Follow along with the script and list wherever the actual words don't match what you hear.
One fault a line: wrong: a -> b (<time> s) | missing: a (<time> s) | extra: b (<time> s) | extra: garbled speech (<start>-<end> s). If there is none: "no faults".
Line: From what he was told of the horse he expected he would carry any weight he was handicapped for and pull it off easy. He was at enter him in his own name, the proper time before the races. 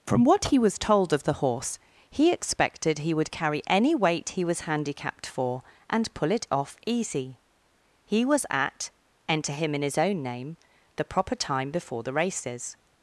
no faults